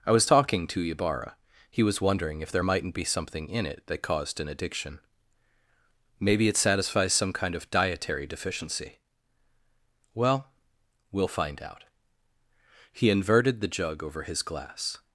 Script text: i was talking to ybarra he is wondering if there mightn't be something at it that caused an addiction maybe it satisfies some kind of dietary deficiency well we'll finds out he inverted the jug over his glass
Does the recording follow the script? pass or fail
fail